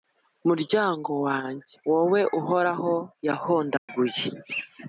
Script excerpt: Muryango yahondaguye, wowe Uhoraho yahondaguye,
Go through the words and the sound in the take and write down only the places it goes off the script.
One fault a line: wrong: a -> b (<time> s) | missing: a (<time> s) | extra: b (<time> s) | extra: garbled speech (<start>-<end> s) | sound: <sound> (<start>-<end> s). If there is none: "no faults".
wrong: yahondaguye -> wanjye (1.2 s)
sound: dropout (3.8-3.9 s)